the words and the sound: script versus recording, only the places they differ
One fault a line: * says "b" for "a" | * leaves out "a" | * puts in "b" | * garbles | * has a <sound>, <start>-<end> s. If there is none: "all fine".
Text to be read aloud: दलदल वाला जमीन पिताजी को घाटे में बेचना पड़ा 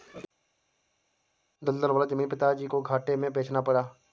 all fine